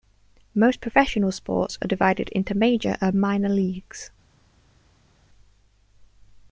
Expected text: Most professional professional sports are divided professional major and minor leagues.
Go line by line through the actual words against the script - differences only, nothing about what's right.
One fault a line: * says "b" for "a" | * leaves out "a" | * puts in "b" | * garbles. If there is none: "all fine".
* leaves out "professional"
* says "into" for "professional"